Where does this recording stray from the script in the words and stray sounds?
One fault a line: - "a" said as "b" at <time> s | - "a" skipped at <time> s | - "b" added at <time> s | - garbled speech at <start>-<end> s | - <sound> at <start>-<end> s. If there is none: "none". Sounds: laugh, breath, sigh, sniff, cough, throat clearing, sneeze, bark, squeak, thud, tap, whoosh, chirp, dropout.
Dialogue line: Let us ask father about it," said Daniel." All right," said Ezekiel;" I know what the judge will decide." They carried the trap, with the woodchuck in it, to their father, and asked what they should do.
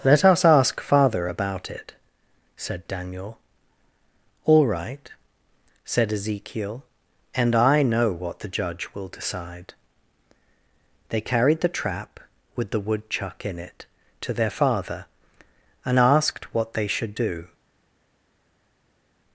- "and" added at 7.3 s